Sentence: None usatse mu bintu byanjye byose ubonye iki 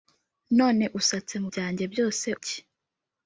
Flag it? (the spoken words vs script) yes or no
yes